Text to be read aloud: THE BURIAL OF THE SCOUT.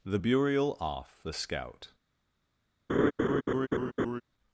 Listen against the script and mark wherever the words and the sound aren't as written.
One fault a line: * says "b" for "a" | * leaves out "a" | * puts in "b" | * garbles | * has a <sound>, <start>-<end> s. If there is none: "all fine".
* says "Off" for "OF"
* has a laugh, 2.9-4.2 s